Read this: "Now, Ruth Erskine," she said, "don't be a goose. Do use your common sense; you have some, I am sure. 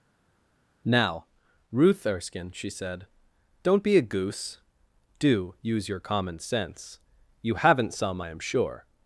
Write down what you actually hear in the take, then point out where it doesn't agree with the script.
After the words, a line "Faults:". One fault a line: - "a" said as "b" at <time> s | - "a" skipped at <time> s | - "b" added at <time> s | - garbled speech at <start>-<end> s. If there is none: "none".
"Now, Ruth Erskine," she said, "don't be a goose. Do use your common sense; you haven't some, I am sure.
Faults:
- "have" said as "haven't" at 7.5 s